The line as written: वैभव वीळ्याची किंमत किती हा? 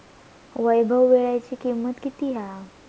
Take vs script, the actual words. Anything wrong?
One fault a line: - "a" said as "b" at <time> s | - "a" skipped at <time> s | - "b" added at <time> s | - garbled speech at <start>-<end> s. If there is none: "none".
none